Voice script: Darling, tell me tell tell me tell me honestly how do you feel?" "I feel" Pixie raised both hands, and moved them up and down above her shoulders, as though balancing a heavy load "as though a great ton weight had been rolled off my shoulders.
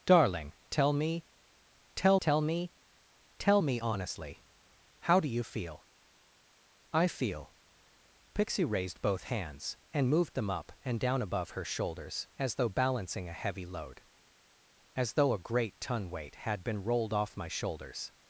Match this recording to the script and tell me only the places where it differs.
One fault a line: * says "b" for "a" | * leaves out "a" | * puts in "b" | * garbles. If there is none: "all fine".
all fine